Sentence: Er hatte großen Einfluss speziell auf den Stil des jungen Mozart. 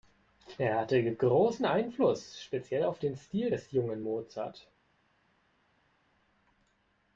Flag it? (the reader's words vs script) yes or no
no